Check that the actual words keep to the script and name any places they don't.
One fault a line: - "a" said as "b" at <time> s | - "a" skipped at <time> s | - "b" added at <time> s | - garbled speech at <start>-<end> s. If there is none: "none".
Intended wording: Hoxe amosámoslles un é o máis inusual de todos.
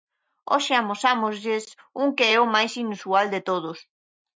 - "que" added at 2.2 s